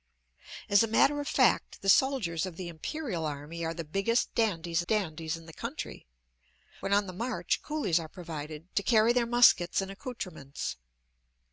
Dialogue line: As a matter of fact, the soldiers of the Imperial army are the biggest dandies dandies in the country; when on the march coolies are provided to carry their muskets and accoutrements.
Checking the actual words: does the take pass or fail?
pass